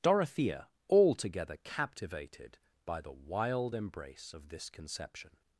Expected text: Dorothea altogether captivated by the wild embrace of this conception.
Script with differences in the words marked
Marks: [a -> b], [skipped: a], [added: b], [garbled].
Dorothea altogether captivated by the wild embrace of this conception.